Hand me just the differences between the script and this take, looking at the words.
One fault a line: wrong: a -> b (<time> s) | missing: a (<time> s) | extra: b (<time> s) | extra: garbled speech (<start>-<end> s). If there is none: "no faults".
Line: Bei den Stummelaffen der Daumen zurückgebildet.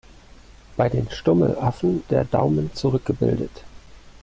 no faults